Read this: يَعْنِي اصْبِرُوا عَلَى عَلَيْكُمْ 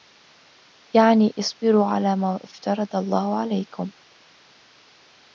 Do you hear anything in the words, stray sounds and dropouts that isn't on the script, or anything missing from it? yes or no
yes